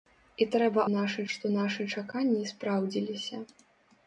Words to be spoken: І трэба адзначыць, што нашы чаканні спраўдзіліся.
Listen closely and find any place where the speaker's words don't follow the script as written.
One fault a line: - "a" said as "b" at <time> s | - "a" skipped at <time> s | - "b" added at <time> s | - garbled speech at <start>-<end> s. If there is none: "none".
- "адзначыць" said as "нашы" at 0.9 s